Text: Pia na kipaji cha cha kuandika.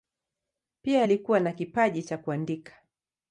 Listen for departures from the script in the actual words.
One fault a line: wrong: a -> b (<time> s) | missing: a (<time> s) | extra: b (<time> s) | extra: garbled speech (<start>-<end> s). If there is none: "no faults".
extra: alikuwa (1.0 s)
missing: cha (2.2 s)